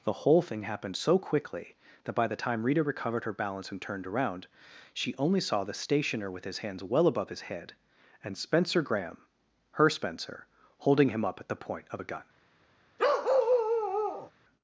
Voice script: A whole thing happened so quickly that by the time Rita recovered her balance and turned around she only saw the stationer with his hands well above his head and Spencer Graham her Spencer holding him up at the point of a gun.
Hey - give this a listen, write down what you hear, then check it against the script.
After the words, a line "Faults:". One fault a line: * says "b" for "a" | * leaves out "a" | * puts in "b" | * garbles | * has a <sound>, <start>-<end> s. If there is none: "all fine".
The whole thing happened so quickly that by the time Rita recovered her balance and turned around she only saw the stationer with his hands well above his head and Spencer Graham her Spencer holding him up at the point of a gun.
Faults:
* says "The" for "A"
* has a bark, 13.0-14.3 s